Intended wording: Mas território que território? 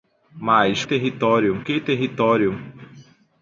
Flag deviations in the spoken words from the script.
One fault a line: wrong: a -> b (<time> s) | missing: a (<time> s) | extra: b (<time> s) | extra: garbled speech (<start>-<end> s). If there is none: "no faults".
no faults